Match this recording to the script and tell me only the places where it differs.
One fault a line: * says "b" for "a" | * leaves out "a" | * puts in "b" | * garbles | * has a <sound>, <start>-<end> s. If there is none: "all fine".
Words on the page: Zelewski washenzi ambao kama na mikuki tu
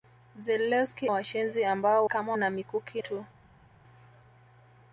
all fine